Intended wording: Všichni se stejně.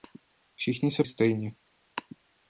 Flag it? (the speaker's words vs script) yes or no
no